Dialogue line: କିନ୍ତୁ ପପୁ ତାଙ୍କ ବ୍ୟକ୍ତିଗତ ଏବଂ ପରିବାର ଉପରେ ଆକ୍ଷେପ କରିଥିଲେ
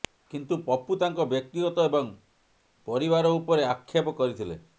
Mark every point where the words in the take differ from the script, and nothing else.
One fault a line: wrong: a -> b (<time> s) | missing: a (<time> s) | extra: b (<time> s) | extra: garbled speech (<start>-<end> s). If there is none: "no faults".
no faults